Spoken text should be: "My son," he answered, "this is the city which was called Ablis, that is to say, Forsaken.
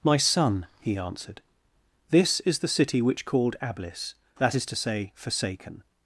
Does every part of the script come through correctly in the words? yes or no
no